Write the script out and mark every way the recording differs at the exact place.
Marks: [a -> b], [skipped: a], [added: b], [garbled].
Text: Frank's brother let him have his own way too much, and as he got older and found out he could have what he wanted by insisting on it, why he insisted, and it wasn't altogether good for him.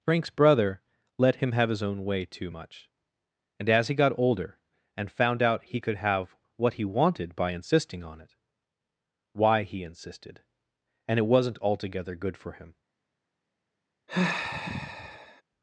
Frank's brother let him have his own way too much, and as he got older and found out he could have what he wanted by insisting on it, why he insisted, and it wasn't altogether good for him.